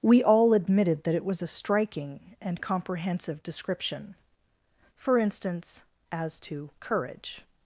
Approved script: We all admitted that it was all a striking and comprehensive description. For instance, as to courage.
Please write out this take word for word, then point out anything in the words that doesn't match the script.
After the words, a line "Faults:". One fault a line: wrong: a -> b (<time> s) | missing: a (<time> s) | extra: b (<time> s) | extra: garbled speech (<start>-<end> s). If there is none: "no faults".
We all admitted that it was a striking and comprehensive description. For instance, as to courage.
Faults:
missing: all (1.4 s)